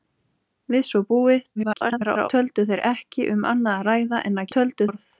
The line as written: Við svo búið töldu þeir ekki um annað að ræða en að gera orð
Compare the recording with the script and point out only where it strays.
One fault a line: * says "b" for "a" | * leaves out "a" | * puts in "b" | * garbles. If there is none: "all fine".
* garbles
* says "töldu" for "gera"